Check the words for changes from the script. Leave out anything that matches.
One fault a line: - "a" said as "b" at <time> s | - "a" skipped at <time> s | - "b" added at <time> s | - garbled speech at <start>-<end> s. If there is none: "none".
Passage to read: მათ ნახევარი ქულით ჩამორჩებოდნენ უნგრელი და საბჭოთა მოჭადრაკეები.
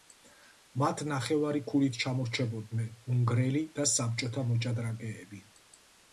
none